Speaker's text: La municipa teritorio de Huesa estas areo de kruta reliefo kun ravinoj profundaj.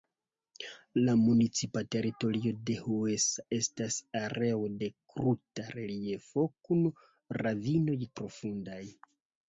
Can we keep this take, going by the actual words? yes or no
yes